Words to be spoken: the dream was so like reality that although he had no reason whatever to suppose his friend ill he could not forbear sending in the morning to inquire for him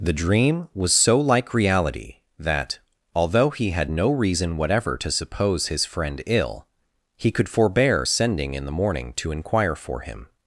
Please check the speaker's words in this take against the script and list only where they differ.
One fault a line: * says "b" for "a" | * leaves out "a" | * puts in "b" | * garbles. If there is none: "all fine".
* leaves out "not"